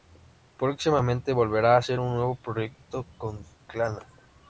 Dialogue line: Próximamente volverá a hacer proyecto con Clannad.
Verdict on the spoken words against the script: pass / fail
fail